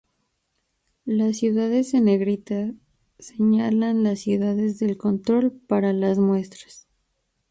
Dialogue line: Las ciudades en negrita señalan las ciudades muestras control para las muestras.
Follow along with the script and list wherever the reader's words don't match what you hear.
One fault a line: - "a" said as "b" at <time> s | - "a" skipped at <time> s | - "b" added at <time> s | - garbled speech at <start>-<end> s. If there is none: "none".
- "muestras" said as "del" at 4.8 s